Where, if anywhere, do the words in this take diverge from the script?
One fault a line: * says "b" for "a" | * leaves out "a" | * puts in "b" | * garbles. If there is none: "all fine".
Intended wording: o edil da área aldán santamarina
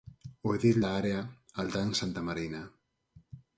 all fine